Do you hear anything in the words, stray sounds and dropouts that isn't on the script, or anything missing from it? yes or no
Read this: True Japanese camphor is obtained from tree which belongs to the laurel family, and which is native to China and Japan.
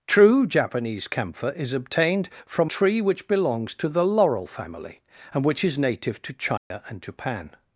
yes